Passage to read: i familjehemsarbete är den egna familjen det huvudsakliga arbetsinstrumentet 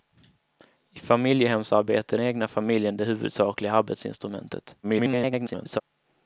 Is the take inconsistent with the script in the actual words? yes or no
yes